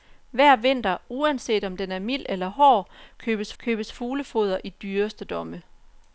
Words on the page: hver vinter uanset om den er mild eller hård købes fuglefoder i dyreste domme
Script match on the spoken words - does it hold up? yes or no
no